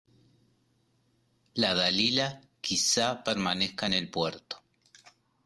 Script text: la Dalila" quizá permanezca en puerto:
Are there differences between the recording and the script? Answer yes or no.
yes